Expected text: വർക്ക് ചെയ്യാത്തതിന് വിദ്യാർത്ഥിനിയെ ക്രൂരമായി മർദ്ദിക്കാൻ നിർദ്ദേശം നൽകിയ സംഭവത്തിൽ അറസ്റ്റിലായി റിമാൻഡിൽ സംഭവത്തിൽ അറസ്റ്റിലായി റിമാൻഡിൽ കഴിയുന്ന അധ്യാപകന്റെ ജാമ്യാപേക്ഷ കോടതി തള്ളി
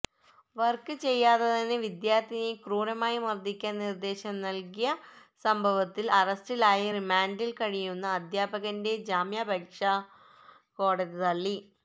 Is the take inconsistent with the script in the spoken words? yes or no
yes